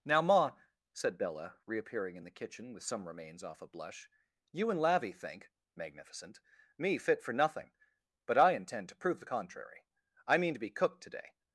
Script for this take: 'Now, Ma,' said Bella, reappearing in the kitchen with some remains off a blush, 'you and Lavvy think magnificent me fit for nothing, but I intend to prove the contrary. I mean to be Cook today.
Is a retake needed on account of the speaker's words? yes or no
no